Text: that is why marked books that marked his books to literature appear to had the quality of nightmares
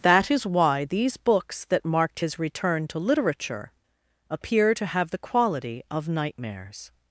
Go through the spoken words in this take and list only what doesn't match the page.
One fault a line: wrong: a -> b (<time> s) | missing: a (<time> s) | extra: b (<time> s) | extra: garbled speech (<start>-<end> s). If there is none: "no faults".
wrong: marked -> these (0.8 s)
wrong: books -> return (2.4 s)
wrong: had -> have (4.8 s)